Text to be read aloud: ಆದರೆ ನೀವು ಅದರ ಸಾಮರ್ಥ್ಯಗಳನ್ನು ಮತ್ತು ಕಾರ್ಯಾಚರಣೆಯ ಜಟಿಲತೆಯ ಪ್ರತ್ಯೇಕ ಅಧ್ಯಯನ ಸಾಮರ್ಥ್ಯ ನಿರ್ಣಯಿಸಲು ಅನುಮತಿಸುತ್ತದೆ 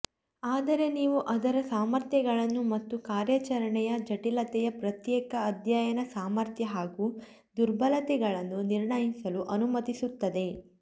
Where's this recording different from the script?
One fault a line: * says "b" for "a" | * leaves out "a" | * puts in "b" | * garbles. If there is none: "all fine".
* puts in "ಹಾಗೂ ದುರ್ಬಲತೆಗಳನ್ನು"